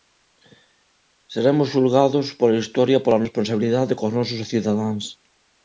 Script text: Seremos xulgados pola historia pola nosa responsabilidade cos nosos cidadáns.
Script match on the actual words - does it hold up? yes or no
no